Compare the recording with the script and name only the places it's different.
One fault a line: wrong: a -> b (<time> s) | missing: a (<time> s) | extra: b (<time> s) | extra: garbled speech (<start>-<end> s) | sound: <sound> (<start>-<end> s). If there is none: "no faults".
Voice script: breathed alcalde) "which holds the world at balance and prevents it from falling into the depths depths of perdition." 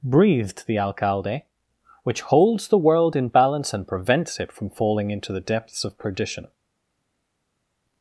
extra: the (0.7 s)
wrong: at -> in (3.1 s)
missing: depths (5.8 s)